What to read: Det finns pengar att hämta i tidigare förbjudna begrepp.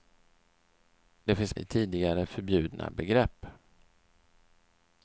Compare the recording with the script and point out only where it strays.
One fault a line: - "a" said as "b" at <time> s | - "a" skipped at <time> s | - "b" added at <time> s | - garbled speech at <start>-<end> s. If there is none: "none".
- "pengar att hämta" skipped at 1.5 s